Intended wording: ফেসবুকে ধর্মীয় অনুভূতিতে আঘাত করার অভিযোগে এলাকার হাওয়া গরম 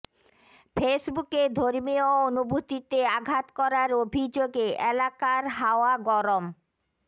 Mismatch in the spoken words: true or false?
false